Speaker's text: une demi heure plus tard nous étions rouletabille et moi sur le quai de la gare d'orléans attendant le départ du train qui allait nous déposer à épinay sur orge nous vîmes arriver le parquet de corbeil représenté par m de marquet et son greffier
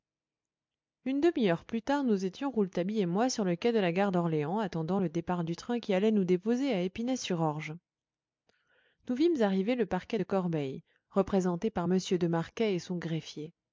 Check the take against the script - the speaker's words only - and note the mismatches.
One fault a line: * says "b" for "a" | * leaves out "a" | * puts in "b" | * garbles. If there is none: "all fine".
all fine